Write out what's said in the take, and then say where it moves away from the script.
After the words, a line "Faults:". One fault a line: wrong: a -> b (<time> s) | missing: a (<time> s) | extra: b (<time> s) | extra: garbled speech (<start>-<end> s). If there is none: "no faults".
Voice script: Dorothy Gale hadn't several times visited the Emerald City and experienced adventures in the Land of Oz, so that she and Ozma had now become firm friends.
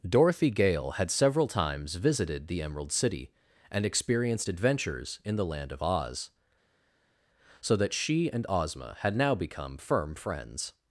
Dorothy Gale had several times visited the Emerald City and experienced adventures in the Land of Oz, so that she and Ozma had now become firm friends.
Faults:
wrong: hadn't -> had (0.9 s)